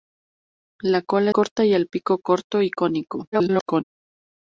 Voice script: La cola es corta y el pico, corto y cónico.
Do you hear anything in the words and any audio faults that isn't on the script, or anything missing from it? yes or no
yes